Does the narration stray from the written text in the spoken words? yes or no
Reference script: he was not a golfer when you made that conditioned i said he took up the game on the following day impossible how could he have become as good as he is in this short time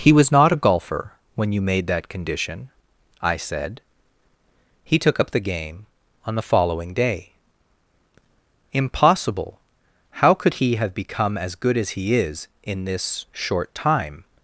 yes